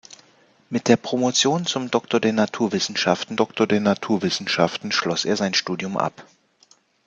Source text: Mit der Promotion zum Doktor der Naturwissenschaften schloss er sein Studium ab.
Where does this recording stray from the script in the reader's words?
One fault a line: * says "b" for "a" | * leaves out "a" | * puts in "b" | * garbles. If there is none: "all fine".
* puts in "Doktor der Naturwissenschaften"